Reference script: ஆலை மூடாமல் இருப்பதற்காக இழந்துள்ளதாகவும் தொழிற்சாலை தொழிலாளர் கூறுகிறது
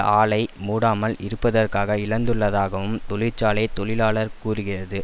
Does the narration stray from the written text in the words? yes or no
no